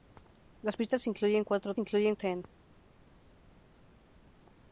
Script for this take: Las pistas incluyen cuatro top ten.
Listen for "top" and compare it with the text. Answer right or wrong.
wrong